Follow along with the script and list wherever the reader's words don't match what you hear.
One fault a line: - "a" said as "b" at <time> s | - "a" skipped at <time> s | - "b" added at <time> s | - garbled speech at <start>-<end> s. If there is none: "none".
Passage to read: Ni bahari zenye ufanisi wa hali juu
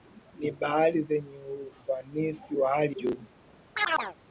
none